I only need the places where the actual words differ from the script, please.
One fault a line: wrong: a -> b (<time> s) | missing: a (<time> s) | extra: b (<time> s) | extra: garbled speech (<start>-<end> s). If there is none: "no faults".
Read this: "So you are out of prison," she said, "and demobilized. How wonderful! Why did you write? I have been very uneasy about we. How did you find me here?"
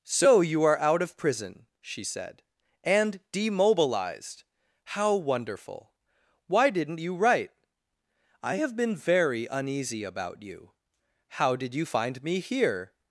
wrong: did -> didn't (6.7 s)
wrong: we -> you (10.4 s)